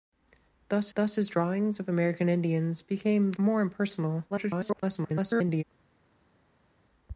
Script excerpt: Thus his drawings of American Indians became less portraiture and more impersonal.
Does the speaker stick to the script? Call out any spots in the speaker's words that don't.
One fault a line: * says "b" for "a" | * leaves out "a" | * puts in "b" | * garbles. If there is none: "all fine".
* puts in "thus"
* leaves out "less portraiture and"
* garbles